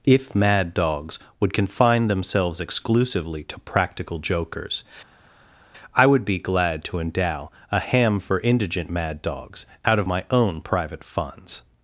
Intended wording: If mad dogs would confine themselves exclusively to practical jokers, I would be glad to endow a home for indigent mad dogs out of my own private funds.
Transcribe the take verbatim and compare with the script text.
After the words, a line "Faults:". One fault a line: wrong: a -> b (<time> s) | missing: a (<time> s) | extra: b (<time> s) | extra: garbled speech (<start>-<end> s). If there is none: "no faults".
If mad dogs would confine themselves exclusively to practical jokers, I would be glad to endow a ham for indigent mad dogs out of my own private funds.
Faults:
wrong: home -> ham (7.8 s)